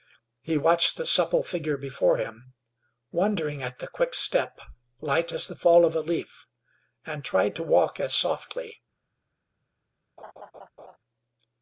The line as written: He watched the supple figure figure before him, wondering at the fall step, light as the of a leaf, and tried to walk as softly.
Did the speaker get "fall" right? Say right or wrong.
wrong